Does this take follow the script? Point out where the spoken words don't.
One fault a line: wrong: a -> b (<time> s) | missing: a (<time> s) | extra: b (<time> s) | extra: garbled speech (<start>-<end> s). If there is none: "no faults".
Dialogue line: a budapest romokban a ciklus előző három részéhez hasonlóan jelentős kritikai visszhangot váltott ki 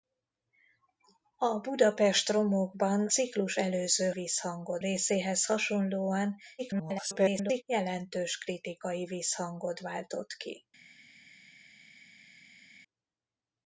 missing: a (3.1 s)
wrong: három -> visszhangot (4.1 s)
extra: garbled speech (6.6-7.6 s)